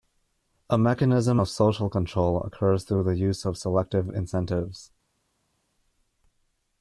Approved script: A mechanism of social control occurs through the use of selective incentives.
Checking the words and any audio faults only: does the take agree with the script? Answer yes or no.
yes